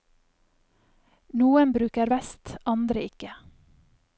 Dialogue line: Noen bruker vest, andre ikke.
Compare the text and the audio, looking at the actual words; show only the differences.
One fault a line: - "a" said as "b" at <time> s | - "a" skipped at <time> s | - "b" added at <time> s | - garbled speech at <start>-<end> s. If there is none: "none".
none